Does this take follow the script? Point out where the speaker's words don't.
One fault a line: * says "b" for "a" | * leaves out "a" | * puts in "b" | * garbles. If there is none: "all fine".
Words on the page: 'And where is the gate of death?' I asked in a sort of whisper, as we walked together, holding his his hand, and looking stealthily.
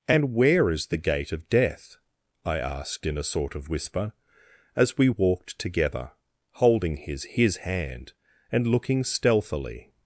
all fine